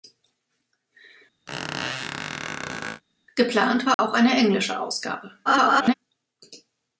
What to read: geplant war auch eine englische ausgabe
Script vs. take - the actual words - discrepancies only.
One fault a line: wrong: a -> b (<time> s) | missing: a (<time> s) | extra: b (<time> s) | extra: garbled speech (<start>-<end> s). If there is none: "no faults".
extra: garbled speech (5.4-5.9 s)